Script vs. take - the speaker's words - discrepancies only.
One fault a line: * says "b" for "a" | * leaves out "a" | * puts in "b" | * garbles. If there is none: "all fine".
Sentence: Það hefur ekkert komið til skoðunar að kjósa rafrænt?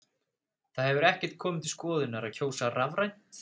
all fine